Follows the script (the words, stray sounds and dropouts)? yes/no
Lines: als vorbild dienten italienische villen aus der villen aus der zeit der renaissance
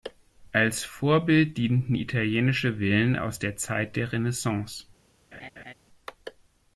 no